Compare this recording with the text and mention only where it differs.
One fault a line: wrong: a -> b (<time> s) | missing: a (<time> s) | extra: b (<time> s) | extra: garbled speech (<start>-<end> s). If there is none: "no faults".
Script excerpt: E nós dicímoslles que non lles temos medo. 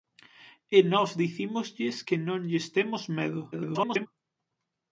extra: garbled speech (3.5-4.1 s)